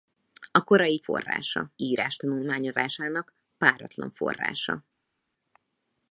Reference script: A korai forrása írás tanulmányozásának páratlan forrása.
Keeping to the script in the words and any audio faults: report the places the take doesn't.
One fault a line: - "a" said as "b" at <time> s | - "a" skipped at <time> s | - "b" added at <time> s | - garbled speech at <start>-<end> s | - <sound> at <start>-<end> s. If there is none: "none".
none